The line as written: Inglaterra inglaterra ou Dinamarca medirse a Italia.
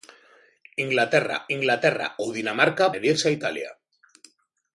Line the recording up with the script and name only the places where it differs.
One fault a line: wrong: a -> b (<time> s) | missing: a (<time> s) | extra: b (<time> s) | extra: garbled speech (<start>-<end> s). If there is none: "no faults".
no faults